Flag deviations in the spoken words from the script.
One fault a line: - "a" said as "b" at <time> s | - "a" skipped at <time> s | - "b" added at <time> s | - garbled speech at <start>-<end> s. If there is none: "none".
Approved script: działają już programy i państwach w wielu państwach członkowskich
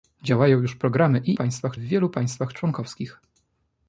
none